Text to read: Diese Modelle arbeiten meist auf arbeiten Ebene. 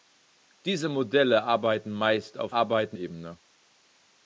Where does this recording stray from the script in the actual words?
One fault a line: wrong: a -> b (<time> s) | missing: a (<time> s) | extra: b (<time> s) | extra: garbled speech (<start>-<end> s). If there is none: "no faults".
no faults